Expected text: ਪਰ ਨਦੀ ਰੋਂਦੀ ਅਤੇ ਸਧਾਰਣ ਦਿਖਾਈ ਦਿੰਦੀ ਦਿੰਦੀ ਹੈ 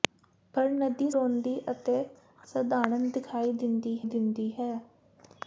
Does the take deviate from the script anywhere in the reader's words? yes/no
no